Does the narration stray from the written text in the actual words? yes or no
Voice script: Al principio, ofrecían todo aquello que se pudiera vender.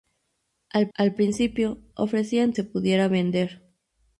yes